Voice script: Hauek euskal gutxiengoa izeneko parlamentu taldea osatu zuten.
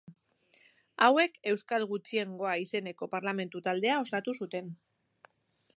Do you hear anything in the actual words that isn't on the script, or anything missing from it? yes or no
no